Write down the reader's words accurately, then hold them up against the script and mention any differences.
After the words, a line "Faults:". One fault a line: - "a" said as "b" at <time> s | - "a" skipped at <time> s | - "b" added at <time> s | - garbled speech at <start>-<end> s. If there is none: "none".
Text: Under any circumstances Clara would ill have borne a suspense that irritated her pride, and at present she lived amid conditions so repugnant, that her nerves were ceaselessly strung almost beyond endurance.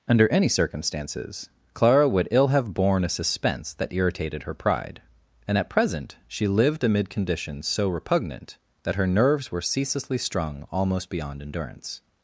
Under any circumstances Clara would ill have borne a suspense that irritated her pride, and at present she lived amid conditions so repugnant, that her nerves were ceaselessly strung almost beyond endurance.
Faults:
none